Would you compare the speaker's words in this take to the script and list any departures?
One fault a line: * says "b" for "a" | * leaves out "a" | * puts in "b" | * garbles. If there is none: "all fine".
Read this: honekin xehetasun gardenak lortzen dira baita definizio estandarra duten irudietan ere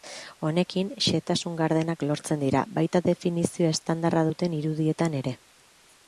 all fine